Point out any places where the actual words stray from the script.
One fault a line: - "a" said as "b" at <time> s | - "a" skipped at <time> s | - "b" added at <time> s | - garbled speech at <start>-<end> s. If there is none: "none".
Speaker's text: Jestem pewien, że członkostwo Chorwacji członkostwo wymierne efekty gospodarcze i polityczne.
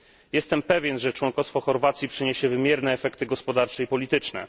- "członkostwo" said as "przyniesie" at 2.1 s